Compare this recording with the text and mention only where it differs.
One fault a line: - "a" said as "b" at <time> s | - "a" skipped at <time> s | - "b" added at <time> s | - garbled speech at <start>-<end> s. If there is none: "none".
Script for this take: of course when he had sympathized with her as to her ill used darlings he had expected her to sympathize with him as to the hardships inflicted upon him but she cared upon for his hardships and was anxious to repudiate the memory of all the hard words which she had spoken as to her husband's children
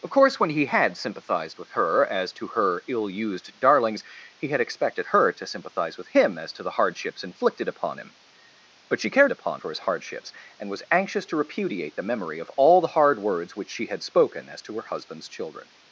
none